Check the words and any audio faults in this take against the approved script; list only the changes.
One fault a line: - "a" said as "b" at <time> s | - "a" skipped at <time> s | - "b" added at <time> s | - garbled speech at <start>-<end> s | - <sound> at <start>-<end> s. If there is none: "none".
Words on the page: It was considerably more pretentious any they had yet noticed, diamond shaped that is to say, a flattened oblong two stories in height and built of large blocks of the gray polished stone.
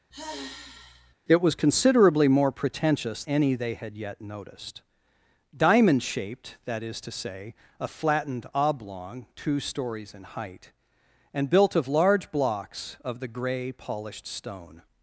- sigh at 0.1-1.1 s